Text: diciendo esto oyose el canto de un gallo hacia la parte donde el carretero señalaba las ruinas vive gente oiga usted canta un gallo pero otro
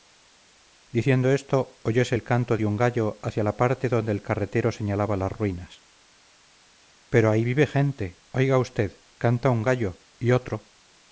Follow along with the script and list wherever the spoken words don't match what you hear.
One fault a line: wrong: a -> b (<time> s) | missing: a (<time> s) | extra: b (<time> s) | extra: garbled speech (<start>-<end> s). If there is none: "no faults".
extra: pero ahí (7.1 s)
wrong: pero -> y (10.2 s)